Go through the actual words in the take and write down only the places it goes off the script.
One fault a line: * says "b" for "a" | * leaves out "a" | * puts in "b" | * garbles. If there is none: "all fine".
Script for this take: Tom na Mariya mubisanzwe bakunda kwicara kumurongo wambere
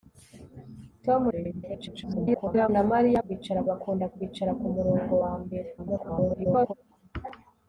* garbles
* says "kwicara" for "mubisanzwe"
* garbles